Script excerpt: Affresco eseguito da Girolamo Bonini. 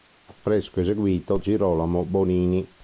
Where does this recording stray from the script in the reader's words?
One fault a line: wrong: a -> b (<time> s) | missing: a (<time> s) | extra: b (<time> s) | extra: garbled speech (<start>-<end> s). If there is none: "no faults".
missing: da (1.4 s)